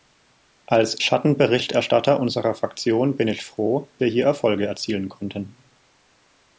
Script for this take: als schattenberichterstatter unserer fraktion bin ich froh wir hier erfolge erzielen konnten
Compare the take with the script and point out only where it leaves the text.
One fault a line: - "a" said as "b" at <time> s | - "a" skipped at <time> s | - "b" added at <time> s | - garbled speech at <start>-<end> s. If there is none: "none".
none